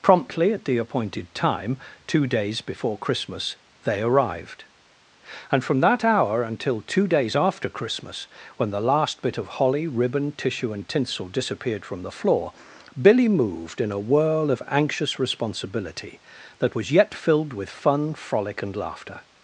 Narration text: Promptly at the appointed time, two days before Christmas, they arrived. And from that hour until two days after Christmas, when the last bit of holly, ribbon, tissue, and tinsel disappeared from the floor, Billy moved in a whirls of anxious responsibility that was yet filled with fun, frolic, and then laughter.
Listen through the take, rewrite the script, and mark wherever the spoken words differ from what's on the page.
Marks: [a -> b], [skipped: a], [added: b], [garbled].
Promptly at the appointed time, two days before Christmas, they arrived. And from that hour until two days after Christmas, when the last bit of holly, ribbon, tissue, and tinsel disappeared from the floor, Billy moved in a [whirls -> whirl] of anxious responsibility that was yet filled with fun, frolic, and [skipped: then] laughter.